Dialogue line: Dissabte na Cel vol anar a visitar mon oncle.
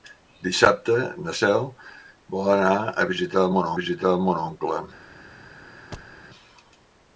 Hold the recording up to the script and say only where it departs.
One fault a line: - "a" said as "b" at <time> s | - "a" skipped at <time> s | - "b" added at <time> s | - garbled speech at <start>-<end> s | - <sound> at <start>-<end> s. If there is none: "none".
- "visitar mon" added at 3.8 s
- thud at 5.9-6.2 s